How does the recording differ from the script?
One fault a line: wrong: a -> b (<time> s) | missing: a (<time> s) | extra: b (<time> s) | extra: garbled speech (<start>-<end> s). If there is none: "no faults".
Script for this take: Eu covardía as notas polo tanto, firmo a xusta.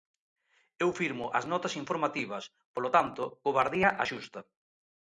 wrong: covardía -> firmo (1.0 s)
extra: informativas (1.8 s)
wrong: firmo -> covardía (3.5 s)